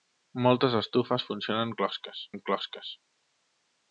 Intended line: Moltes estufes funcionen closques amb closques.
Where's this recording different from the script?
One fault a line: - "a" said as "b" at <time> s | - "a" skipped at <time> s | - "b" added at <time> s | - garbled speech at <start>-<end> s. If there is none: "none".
none